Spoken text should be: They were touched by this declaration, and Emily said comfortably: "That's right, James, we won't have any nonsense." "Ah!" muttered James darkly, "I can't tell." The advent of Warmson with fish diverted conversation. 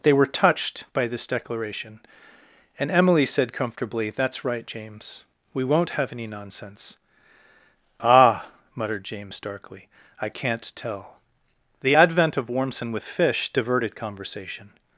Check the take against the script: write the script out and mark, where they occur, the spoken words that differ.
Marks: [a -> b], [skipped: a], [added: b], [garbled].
They were touched by this declaration, and Emily said comfortably: "That's right, James, we won't have any nonsense." "Ah!" muttered James darkly, "I can't tell." The advent of Warmson with fish diverted conversation.